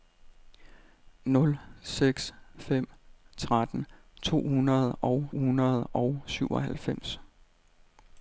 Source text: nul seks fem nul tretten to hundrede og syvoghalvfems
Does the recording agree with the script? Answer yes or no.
no